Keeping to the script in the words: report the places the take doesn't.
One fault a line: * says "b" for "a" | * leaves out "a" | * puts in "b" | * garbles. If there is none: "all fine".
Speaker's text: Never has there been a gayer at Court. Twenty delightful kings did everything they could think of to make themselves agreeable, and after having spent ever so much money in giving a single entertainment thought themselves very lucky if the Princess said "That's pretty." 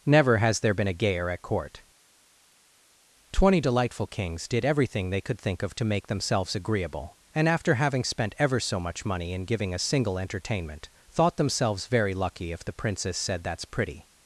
all fine